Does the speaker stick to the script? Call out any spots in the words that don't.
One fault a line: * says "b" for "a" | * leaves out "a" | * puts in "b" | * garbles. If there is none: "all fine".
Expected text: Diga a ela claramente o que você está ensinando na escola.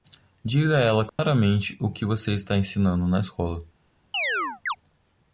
all fine